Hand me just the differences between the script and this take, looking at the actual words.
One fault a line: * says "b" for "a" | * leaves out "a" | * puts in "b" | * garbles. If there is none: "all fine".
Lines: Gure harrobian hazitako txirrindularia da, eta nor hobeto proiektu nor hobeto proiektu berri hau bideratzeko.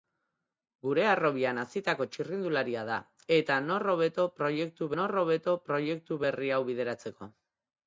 all fine